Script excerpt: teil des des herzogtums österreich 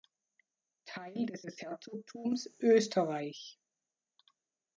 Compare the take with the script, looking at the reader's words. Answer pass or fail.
pass